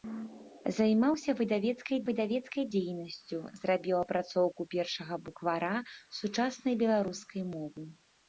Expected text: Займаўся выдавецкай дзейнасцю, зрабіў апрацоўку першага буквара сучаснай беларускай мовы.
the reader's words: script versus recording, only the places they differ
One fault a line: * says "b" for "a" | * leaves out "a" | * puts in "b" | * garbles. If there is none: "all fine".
* puts in "выдавецкай"